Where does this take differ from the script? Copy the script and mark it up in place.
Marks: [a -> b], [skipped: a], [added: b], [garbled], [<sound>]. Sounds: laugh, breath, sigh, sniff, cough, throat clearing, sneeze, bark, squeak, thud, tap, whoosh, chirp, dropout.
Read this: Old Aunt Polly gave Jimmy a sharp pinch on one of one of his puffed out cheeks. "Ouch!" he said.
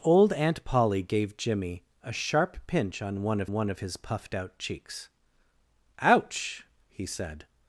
Old Aunt Polly gave Jimmy a sharp pinch on one of one of his puffed out cheeks. "Ouch!" he said.